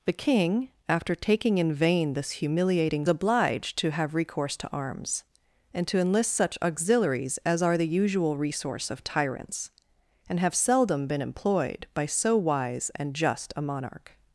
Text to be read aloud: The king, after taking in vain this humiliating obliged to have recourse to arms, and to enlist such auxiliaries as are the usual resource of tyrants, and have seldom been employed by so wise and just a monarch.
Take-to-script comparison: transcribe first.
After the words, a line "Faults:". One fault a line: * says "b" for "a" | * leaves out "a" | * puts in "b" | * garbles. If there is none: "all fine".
The king, after taking in vain this humiliating obliged to have recourse to arms, and to enlist such auxiliaries as are the usual resource of tyrants, and have seldom been employed by so wise and just a monarch.
Faults:
all fine